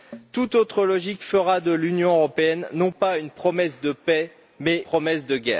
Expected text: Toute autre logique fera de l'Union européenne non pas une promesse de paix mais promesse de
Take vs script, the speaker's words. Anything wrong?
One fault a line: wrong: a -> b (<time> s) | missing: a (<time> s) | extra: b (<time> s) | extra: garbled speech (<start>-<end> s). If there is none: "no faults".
no faults